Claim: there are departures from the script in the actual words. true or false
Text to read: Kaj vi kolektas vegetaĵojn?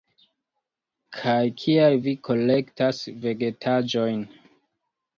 true